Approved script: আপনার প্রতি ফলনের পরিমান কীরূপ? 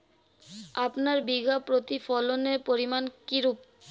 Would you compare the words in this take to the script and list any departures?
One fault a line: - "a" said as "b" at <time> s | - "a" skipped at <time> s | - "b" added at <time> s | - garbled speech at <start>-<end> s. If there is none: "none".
- "বিঘা" added at 1.3 s